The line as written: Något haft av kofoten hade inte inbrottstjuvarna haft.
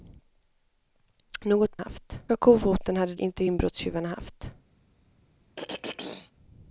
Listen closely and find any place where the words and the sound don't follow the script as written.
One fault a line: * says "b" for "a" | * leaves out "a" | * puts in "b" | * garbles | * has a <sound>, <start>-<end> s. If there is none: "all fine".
* has a throat clearing, 5.6-6.3 s